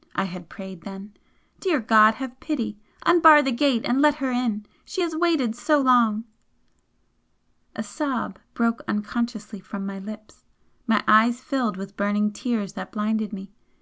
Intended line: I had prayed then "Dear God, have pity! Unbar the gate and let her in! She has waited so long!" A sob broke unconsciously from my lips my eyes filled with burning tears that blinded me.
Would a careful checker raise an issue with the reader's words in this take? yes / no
no